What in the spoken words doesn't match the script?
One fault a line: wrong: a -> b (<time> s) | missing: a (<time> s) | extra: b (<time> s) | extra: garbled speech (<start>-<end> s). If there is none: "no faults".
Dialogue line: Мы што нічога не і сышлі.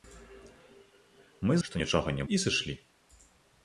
no faults